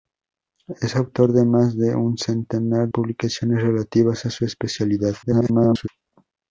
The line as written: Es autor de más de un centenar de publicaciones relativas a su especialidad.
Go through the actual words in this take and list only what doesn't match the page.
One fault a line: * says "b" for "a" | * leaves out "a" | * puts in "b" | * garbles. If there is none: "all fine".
* leaves out "de"
* garbles